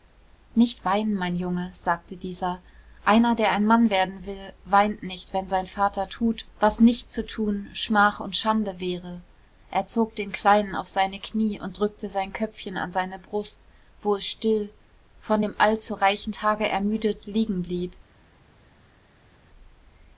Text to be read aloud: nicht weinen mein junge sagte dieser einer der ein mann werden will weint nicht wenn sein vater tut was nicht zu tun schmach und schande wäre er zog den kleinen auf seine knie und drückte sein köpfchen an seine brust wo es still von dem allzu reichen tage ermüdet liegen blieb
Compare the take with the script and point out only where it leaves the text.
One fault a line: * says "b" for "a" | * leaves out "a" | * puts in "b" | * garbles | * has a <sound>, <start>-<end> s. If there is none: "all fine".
all fine